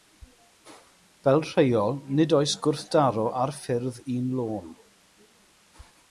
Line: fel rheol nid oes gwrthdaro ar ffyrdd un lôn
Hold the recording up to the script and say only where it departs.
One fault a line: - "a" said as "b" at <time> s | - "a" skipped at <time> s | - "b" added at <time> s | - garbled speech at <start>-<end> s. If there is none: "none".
none